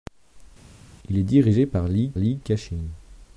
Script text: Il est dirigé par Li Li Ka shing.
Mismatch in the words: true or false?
false